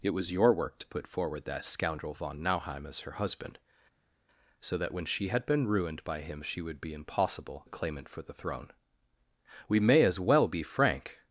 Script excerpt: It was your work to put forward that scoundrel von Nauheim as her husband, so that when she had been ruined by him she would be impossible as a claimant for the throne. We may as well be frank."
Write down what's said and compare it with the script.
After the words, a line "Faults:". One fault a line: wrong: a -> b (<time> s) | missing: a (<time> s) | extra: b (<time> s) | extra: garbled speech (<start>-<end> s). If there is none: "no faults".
It was your work to put forward that scoundrel von Nauheim as her husband, so that when she had been ruined by him she would be impossible a claimant for the throne. We may as well be frank."
Faults:
missing: as (7.6 s)